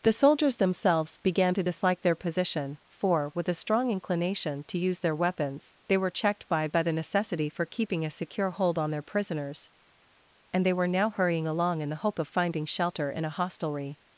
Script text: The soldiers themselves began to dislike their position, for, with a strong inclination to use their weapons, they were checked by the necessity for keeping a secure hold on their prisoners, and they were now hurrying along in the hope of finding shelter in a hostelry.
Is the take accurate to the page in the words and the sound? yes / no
no